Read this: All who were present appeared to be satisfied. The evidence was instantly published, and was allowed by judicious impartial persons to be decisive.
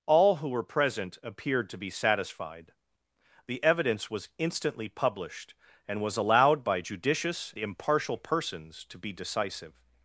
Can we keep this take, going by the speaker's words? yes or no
yes